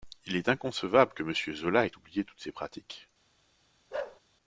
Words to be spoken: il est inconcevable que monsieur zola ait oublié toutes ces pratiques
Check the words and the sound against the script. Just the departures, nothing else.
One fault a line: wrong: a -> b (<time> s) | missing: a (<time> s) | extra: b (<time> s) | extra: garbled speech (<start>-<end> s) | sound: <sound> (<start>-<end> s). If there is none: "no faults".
sound: bark (3.9-4.2 s)